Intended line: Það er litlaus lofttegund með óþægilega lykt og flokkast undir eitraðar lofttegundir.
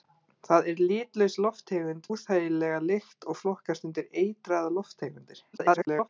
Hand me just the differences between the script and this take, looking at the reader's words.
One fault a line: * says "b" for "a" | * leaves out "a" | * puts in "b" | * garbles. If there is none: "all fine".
* leaves out "með"
* garbles